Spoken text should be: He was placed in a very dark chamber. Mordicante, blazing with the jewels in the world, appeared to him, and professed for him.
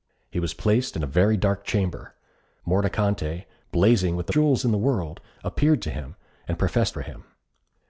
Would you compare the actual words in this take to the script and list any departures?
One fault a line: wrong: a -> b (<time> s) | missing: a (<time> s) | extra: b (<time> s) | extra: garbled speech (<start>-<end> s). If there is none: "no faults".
no faults